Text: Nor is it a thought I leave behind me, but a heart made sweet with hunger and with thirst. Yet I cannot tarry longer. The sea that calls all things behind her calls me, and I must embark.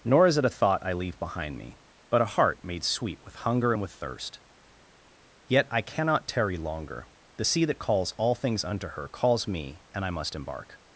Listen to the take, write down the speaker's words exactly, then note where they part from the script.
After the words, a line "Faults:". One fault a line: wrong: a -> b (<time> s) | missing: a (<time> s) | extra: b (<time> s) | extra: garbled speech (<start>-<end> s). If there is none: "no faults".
Nor is it a thought I leave behind me, but a heart made sweet with hunger and with thirst. Yet I cannot tarry longer. The sea that calls all things unto her calls me, and I must embark.
Faults:
wrong: behind -> unto (8.6 s)